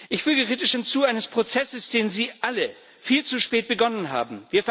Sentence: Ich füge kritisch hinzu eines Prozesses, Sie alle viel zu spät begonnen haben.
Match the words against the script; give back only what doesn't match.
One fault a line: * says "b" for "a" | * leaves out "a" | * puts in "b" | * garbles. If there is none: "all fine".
* puts in "den"